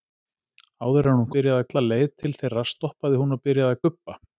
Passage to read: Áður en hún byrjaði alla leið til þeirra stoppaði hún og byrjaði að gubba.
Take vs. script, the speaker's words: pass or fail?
pass